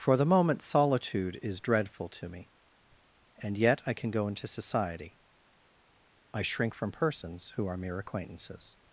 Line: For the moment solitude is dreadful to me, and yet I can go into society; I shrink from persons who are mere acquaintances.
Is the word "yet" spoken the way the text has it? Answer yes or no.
yes